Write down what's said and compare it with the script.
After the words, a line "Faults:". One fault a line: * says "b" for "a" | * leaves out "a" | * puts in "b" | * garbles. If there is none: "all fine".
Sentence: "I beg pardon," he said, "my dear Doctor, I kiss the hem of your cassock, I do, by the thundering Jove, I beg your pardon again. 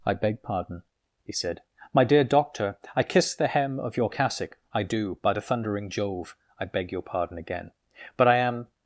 "I beg pardon," he said, "my dear Doctor, I kiss the hem of your cassock, I do, by the thundering Jove, I beg your pardon again. But I am
Faults:
* puts in "But I am"